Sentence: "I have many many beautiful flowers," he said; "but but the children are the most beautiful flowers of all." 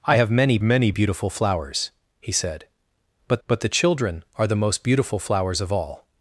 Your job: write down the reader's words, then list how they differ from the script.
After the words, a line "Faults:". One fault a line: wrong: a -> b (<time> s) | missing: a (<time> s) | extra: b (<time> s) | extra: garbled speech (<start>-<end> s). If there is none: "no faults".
"I have many many beautiful flowers," he said; "but but the children are the most beautiful flowers of all."
Faults:
no faults